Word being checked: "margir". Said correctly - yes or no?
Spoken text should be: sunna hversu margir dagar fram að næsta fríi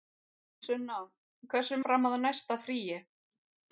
no